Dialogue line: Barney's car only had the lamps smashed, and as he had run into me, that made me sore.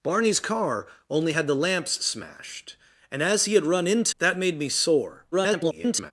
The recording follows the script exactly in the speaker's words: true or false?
false